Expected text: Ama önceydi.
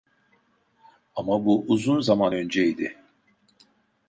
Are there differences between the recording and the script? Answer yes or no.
yes